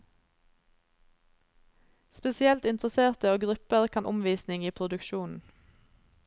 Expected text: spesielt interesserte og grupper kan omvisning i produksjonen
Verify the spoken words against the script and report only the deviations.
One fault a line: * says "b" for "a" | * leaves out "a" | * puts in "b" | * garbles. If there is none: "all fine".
all fine